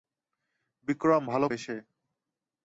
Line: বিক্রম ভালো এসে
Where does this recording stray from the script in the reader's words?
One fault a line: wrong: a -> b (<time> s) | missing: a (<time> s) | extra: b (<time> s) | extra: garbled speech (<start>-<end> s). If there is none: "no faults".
no faults